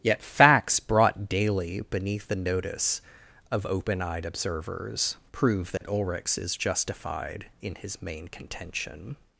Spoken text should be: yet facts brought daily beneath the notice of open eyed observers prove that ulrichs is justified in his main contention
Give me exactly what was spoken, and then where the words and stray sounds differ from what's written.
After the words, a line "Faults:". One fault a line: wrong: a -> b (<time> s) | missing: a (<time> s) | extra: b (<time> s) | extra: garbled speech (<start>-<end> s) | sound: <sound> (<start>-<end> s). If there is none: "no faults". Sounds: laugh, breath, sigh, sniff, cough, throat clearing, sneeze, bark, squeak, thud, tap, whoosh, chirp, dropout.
yet facts brought daily beneath the notice of open eyed observers prove that ulrichs is justified in his main contention
Faults:
sound: dropout (5.8-5.8 s)